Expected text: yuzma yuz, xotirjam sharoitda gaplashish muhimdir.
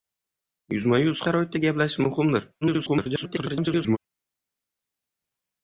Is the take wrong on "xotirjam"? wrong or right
wrong